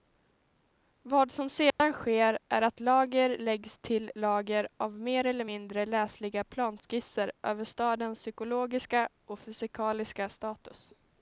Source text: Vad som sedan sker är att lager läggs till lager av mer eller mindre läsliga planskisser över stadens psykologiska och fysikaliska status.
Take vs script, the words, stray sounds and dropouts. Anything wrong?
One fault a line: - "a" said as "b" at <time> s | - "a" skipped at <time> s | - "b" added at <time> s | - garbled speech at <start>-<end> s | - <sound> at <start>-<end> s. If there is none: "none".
- dropout at 1.7-1.8 s